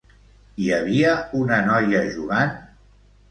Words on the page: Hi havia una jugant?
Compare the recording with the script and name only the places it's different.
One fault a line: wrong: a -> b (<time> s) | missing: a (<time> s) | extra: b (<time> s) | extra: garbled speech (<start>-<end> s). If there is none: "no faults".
extra: noia (1.7 s)